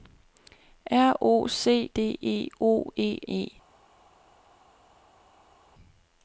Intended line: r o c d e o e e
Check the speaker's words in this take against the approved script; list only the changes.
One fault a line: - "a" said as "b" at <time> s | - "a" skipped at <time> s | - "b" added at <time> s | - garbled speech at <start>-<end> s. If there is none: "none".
none